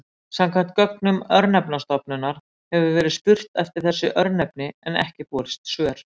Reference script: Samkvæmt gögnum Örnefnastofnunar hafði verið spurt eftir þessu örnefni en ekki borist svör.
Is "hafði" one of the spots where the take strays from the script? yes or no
yes